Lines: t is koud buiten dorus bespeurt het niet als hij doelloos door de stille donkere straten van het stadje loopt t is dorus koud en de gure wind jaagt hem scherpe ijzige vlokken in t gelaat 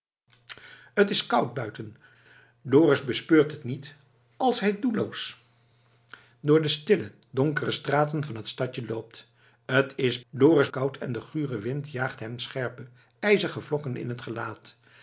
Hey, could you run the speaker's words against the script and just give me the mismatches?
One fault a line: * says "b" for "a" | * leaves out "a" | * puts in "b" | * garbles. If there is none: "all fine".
all fine